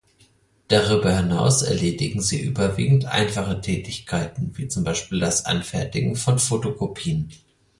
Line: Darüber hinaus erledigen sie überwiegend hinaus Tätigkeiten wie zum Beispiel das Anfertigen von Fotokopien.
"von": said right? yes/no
yes